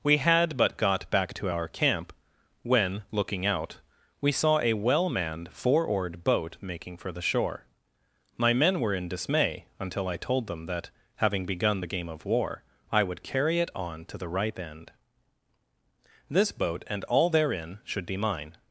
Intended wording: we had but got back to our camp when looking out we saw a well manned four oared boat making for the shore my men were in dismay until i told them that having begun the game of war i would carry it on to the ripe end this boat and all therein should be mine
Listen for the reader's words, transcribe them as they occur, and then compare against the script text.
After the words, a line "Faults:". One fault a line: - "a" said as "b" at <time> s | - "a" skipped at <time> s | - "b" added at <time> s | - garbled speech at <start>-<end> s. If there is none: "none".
we had but got back to our camp when looking out we saw a well manned four oared boat making for the shore my men were in dismay until i told them that having begun the game of war i would carry it on to the ripe end this boat and all therein should be mine
Faults:
none